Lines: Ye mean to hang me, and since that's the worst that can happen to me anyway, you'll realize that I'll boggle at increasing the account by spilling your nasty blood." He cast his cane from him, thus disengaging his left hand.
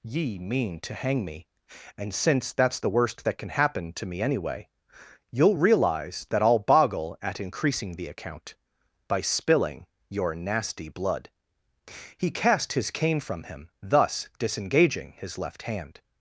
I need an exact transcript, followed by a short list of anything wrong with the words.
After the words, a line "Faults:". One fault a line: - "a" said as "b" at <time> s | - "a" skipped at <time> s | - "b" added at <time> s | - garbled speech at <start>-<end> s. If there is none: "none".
Ye mean to hang me, and since that's the worst that can happen to me anyway, you'll realize that I'll boggle at increasing the account by spilling your nasty blood." He cast his cane from him, thus disengaging his left hand.
Faults:
none